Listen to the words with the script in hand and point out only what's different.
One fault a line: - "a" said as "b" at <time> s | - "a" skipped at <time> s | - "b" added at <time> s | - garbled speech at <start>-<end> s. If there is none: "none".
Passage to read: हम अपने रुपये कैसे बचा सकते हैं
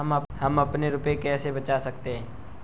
none